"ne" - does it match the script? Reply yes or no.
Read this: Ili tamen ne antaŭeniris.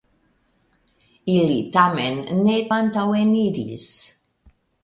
yes